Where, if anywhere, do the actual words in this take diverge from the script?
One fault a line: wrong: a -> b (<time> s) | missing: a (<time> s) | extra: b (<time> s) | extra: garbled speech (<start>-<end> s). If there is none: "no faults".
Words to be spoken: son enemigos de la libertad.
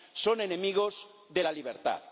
no faults